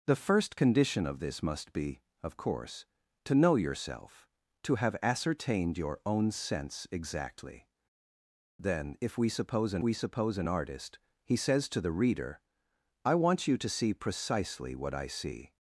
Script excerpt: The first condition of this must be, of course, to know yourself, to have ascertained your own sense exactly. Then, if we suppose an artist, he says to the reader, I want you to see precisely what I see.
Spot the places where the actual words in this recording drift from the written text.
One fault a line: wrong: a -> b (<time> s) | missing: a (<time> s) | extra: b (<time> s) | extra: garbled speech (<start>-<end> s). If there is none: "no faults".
extra: we suppose an (9.8 s)